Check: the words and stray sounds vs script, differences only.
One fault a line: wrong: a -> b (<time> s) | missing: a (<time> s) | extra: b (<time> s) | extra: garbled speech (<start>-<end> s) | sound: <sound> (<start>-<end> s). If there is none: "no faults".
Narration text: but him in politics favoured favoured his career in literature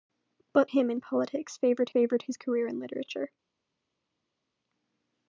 no faults